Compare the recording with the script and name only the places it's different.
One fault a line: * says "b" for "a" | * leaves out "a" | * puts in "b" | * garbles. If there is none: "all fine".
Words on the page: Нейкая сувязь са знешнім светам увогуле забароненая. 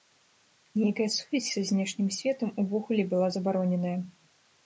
* puts in "была"